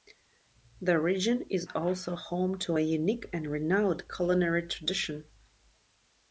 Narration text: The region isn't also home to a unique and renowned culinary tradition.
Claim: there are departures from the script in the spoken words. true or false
true